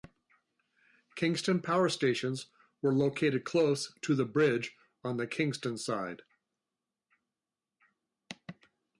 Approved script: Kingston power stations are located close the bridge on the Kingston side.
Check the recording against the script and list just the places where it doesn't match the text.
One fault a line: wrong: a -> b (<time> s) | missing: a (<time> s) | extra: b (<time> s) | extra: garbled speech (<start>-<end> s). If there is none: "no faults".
wrong: are -> were (2.8 s)
extra: to (4.0 s)